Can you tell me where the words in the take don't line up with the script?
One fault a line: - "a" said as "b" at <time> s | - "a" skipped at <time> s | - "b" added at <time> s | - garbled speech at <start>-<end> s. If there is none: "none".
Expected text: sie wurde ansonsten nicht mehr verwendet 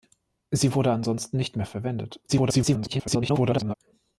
- garbled speech at 2.3-3.7 s